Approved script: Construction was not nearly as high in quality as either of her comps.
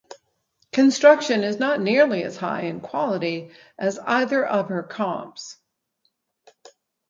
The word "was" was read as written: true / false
false